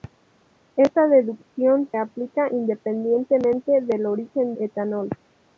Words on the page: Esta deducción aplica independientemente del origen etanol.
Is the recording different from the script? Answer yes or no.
no